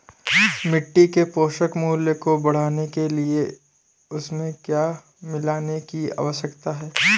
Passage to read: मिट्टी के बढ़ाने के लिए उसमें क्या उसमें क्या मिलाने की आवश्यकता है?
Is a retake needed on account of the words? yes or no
yes